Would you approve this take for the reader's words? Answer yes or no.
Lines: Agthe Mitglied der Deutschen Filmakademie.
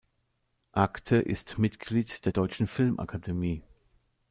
no